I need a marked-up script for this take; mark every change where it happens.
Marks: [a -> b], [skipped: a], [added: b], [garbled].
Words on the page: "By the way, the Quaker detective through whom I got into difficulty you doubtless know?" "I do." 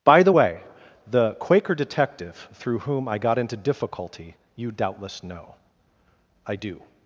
"By the way, the Quaker detective through whom I got into difficulty you doubtless know?" "I do."